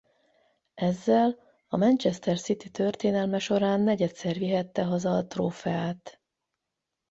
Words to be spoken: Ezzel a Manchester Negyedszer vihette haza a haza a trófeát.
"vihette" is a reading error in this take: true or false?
false